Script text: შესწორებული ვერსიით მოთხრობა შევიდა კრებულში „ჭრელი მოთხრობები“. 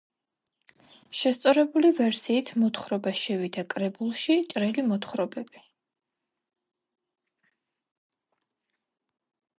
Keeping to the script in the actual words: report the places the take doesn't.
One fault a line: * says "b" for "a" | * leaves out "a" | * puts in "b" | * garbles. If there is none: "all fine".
all fine